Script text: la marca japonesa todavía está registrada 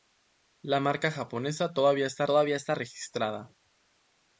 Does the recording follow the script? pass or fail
fail